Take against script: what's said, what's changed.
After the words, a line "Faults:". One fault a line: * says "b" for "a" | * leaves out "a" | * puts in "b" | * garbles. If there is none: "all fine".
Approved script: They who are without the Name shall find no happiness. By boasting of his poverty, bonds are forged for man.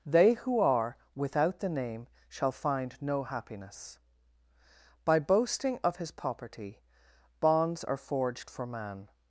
They who are without the Name shall find no happiness. By boasting of his poverty, bonds are forged for man.
Faults:
all fine